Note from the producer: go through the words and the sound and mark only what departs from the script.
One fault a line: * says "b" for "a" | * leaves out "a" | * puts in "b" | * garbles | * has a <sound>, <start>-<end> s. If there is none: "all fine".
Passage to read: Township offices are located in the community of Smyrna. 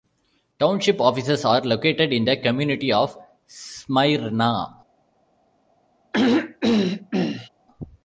* has a throat clearing, 6.1-7.5 s